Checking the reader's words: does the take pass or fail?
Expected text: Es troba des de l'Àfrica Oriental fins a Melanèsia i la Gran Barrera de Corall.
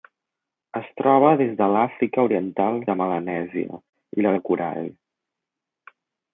fail